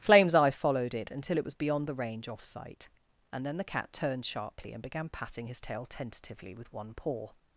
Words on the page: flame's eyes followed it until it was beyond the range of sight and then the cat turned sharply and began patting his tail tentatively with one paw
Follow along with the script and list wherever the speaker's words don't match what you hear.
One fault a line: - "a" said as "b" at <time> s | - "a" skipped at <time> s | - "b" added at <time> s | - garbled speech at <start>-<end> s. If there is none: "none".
- "eyes" said as "eye" at 0.3 s
- "of" said as "off" at 2.3 s